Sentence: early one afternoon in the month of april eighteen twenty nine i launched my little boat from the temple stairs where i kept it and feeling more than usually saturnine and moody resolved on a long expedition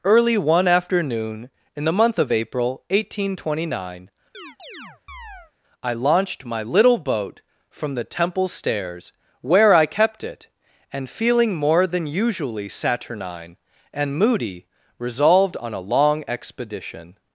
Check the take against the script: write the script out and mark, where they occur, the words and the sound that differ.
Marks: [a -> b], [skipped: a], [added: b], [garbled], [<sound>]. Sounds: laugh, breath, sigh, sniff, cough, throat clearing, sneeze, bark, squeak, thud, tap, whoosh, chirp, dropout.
early one afternoon in the month of april eighteen twenty nine [chirp] i launched my little boat from the temple stairs where i kept it and feeling more than usually saturnine and moody resolved on a long expedition